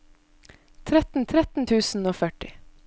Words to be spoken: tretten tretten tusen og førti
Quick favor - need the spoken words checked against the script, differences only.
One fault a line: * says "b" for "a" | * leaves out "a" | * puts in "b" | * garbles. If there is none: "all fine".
all fine